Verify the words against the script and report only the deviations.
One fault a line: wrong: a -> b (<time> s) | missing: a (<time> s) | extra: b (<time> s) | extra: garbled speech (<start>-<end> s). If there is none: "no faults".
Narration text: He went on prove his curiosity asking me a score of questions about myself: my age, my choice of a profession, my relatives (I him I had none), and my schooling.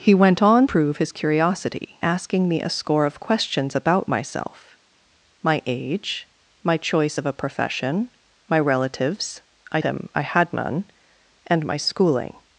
no faults